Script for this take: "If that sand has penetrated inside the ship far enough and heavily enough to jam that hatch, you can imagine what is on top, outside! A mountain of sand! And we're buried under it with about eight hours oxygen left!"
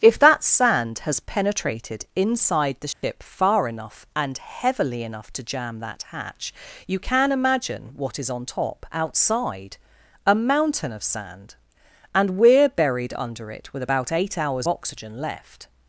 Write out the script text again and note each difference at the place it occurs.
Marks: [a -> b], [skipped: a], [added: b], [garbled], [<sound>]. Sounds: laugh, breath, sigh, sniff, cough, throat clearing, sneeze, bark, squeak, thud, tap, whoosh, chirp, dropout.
"If that sand has penetrated inside the ship [dropout] far enough and heavily enough to jam that hatch, you can imagine what is on top, outside! A mountain of sand! And we're buried under it with about eight hours oxygen left!"